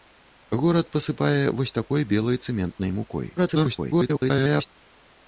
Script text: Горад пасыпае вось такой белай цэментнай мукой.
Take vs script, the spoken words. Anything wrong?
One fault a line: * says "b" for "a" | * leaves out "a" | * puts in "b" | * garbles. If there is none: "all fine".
* garbles